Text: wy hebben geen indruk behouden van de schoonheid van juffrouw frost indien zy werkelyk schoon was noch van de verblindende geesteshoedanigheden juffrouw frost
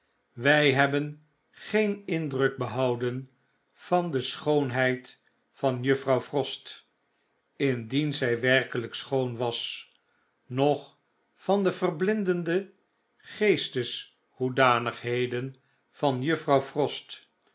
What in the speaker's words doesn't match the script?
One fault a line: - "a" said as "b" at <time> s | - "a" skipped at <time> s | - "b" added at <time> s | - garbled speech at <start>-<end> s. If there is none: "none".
- "van" added at 15.9 s